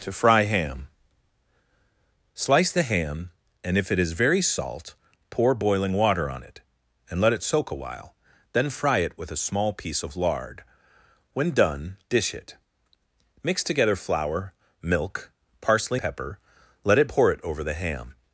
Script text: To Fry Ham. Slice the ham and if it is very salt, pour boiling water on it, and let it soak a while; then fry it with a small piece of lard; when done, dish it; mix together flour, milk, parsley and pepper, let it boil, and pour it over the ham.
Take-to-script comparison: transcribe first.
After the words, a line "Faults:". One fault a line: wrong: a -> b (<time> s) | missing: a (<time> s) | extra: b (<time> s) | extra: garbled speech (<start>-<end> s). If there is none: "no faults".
To Fry Ham. Slice the ham and if it is very salt, pour boiling water on it, and let it soak a while; then fry it with a small piece of lard; when done, dish it; mix together flour, milk, parsley pepper, let it pour it over the ham.
Faults:
missing: and (16.0 s)
missing: boil and (17.1 s)